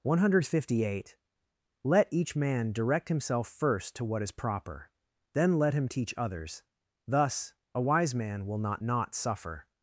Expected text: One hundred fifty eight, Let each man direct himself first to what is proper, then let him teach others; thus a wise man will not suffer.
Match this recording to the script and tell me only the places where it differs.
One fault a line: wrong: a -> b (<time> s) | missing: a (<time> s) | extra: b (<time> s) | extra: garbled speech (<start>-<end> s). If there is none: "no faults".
extra: not (8.8 s)